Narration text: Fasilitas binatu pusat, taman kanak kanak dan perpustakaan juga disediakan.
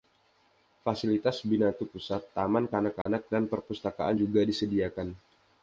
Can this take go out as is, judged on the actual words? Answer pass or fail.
pass